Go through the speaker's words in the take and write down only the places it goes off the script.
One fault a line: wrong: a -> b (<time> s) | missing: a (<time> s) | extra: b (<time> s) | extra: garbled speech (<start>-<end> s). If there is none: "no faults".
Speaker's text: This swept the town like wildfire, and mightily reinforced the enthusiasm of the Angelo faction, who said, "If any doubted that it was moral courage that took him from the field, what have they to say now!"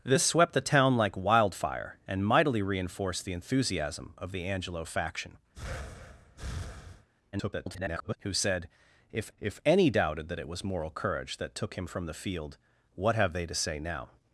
extra: garbled speech (7.3-8.2 s)
extra: if (9.4 s)